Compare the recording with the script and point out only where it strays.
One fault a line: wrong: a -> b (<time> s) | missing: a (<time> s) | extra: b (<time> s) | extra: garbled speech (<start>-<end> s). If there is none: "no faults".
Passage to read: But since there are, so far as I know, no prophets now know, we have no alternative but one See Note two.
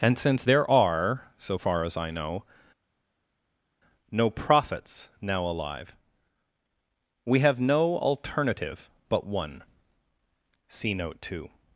wrong: But -> And (0.0 s)
wrong: know -> alive (5.4 s)